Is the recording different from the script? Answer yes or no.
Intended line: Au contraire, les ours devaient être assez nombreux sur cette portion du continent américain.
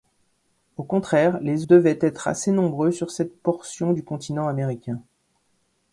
yes